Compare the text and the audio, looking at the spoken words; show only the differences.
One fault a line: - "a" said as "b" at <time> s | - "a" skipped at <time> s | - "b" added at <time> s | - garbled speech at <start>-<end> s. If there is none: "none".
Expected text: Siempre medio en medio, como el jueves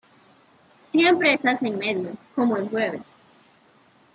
- "medio" said as "estás" at 1.3 s